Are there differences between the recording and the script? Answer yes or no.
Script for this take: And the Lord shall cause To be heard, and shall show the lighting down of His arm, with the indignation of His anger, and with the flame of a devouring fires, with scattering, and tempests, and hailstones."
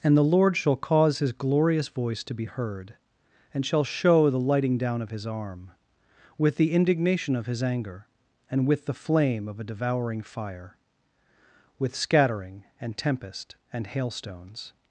yes